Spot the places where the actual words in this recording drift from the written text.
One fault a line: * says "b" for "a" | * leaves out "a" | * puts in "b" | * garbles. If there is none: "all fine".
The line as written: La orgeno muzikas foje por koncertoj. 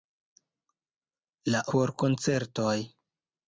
* leaves out "orgeno muzikas foje"